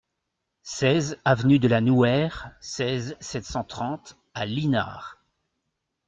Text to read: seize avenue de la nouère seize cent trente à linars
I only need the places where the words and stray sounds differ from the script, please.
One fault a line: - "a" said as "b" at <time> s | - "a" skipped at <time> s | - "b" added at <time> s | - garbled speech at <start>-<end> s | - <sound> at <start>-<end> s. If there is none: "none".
- "sept" added at 3.2 s